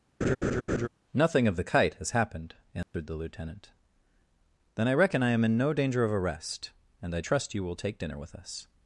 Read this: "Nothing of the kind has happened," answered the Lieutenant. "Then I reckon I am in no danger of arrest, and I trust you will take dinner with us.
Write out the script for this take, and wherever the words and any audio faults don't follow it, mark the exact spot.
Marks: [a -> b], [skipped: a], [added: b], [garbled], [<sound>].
[laugh] "Nothing of the [kind -> kite] has happened," answered [dropout] the Lieutenant. "Then I reckon I am in no danger of arrest, and I trust you will take dinner with us.